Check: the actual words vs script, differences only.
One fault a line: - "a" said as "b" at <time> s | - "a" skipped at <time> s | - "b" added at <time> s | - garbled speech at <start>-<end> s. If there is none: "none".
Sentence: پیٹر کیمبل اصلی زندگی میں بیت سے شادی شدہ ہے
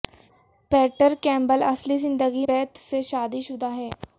- "میں" skipped at 2.5 s